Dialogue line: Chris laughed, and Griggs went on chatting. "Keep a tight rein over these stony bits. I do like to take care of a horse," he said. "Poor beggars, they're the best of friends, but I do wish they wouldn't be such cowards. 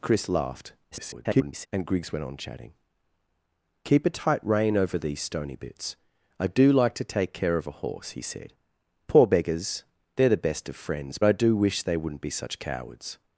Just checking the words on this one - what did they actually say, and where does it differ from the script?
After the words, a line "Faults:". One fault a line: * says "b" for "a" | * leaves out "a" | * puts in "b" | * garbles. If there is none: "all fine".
Chris laughed, [garbled] and Griggs went on chatting. "Keep a tight rein over these stony bits. I do like to take care of a horse," he said. "Poor beggars, they're the best of friends, I do wish they wouldn't be such cowards.
Faults:
* garbles
* leaves out "but"